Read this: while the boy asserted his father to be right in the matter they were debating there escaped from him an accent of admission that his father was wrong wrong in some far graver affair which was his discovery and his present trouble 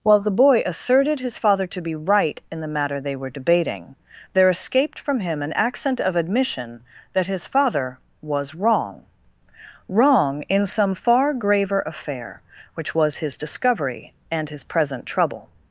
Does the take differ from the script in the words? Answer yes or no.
no